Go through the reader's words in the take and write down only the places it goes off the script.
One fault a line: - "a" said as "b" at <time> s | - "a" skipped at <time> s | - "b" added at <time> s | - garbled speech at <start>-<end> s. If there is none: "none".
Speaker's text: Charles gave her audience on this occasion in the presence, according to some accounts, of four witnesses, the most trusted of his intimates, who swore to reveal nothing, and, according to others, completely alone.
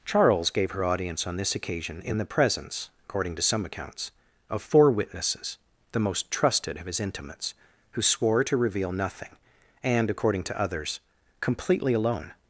none